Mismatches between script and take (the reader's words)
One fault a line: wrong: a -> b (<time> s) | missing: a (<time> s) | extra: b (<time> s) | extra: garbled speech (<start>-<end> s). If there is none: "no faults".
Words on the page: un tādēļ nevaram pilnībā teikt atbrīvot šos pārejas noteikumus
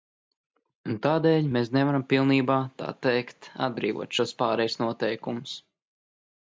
extra: mēs (1.6 s)
extra: tā (2.8 s)